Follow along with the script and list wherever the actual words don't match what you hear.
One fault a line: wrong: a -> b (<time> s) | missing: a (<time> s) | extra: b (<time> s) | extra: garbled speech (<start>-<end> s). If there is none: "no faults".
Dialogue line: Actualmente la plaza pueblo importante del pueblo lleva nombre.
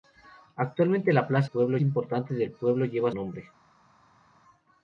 no faults